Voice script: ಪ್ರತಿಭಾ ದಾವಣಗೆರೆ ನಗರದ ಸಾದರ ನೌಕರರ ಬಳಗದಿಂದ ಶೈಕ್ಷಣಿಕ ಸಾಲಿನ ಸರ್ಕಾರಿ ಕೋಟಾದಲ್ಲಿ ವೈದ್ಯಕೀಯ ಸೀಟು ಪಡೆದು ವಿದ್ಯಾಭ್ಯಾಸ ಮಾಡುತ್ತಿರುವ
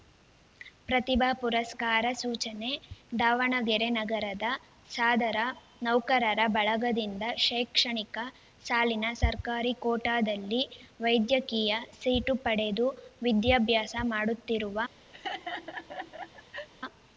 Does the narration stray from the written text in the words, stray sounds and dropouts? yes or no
yes